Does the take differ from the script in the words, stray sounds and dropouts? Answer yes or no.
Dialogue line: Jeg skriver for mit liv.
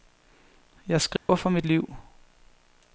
yes